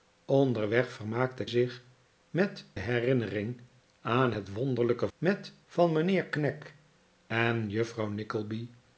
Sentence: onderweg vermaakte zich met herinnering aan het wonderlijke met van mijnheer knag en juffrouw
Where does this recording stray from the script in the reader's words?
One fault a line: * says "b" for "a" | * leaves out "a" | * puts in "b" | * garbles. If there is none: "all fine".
all fine